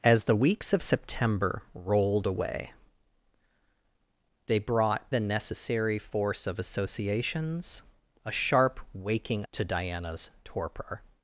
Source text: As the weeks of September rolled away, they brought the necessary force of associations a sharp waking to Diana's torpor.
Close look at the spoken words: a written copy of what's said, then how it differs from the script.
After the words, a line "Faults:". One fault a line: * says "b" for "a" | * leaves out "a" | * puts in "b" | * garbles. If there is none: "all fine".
As the weeks of September rolled away, they brought the necessary force of associations a sharp waking to Diana's torpor.
Faults:
all fine